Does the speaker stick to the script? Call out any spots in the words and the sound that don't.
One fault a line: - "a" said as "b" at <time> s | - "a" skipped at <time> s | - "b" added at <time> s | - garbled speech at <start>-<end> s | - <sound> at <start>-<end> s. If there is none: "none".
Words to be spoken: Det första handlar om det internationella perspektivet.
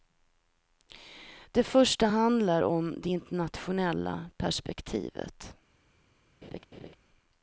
- laugh at 6.4-7.0 s